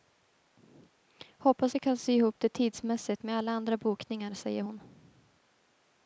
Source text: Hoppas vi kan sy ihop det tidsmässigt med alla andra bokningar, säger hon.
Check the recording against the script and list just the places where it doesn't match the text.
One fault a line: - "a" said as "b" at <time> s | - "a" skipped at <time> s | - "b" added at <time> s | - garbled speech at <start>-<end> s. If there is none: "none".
none